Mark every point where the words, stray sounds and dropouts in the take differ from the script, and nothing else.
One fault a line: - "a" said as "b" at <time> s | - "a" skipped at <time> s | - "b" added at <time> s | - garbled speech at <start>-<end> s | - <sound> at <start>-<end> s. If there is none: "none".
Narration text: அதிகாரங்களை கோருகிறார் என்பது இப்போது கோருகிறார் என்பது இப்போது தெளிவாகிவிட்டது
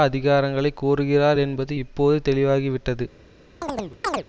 - "கோருகிறார் என்பது இப்போது" skipped at 2.3 s
- chirp at 3.6-4.2 s